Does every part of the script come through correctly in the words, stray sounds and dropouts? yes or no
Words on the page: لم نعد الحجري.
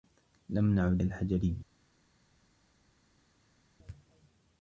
yes